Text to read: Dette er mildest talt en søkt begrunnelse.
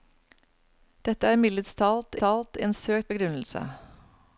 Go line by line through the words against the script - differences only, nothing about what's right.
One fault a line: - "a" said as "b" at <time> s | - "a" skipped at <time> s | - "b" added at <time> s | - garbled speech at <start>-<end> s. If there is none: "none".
- "talt" added at 2.2 s